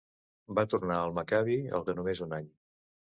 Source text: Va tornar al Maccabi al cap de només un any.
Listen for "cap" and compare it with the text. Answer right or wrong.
wrong